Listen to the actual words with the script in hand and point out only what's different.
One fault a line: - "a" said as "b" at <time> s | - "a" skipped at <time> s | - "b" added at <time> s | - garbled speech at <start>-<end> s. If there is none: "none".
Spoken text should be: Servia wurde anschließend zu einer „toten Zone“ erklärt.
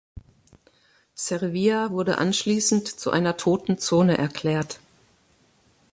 none